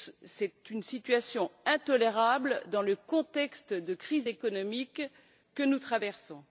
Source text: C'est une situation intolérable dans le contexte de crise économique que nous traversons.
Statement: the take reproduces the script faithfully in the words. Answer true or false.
true